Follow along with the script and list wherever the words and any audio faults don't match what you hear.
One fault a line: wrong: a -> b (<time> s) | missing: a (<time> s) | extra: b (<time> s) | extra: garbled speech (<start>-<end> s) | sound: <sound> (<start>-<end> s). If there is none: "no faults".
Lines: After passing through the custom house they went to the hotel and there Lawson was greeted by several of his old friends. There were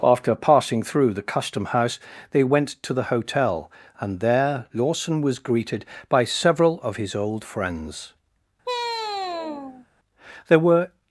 sound: sigh (8.6-9.9 s)